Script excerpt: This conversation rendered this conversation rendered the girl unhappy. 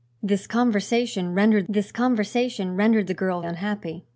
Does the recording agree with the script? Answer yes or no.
yes